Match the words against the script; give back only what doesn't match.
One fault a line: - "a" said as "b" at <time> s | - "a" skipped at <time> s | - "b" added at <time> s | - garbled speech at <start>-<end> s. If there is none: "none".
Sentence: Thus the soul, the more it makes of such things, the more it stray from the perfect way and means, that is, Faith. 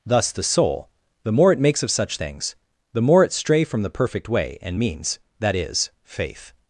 none